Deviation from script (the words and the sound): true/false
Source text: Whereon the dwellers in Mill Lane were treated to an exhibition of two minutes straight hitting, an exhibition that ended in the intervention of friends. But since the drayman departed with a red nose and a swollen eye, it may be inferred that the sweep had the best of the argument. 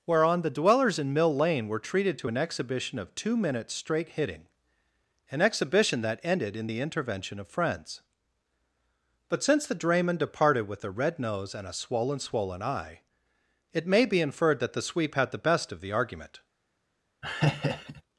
true